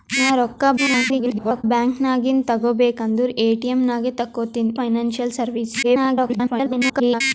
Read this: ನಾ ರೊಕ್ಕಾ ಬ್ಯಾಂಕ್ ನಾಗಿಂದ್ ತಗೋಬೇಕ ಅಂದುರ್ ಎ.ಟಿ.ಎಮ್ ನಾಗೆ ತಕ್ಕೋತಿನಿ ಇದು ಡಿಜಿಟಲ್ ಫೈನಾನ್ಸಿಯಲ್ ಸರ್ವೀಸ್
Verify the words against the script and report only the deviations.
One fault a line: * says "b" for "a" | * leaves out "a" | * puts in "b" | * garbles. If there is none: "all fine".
* garbles
* leaves out "ಇದು ಡಿಜಿಟಲ್"
* garbles